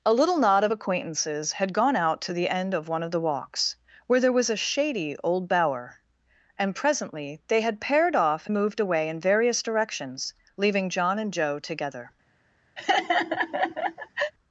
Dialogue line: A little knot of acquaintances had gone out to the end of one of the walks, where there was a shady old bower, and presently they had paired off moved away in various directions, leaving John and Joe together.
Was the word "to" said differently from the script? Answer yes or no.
no